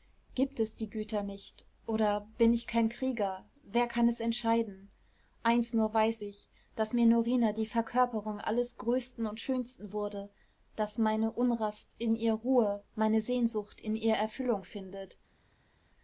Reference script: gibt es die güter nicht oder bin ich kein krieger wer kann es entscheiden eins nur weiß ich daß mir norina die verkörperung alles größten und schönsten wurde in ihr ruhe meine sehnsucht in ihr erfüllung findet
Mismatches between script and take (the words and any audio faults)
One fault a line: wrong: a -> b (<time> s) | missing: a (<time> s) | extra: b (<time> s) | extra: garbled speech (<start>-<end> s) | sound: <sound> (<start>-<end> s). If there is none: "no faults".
extra: daß meine unrast (10.8 s)